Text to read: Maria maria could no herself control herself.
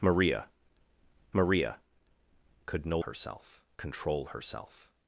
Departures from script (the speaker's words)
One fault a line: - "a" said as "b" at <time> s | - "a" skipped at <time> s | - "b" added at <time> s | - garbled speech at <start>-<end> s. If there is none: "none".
none